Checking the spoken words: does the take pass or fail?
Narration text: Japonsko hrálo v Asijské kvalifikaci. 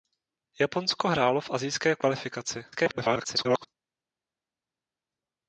fail